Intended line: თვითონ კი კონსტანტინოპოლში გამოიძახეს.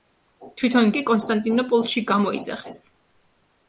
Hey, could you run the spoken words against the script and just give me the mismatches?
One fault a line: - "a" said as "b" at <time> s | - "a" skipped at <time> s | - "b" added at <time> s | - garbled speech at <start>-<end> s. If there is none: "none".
none